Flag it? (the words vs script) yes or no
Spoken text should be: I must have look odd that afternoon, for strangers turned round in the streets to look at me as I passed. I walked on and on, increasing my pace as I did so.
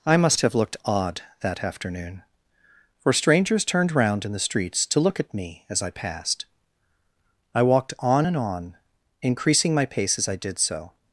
yes